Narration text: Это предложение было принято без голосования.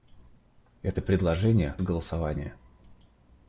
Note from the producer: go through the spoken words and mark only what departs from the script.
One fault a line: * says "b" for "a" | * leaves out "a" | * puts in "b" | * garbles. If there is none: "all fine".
* leaves out "было принято без"